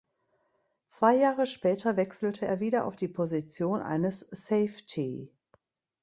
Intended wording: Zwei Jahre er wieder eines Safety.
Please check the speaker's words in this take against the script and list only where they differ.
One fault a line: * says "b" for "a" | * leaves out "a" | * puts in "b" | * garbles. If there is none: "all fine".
* puts in "später wechselte"
* puts in "auf die Position"